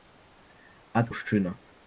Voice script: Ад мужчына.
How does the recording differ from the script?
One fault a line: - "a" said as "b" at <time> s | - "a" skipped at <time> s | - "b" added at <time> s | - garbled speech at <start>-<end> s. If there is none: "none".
none